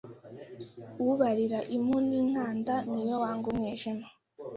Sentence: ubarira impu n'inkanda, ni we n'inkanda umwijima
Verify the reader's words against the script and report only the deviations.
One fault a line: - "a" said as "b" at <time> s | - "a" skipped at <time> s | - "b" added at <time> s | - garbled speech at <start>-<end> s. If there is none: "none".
- "n'inkanda" said as "wanga" at 3.2 s